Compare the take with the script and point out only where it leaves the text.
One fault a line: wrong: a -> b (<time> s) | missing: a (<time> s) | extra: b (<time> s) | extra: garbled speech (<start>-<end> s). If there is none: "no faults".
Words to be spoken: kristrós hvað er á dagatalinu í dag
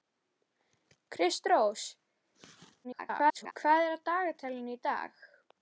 extra: garbled speech (2.8-3.5 s)